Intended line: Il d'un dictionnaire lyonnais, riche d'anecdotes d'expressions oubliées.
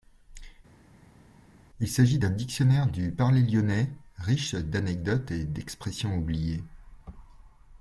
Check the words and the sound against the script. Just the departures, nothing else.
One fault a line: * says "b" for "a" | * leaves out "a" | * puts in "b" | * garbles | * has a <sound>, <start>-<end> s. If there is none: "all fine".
* puts in "s'agit"
* puts in "du parler"
* puts in "et"